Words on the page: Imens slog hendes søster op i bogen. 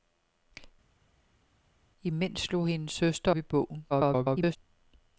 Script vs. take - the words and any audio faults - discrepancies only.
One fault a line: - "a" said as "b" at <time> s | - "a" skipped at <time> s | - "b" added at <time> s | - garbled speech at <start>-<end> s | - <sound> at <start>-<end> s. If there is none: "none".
- "op" skipped at 3.3 s
- garbled speech at 3.9-4.6 s